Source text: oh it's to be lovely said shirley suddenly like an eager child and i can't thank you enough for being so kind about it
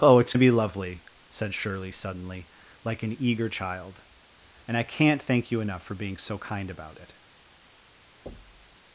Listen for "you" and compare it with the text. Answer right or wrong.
right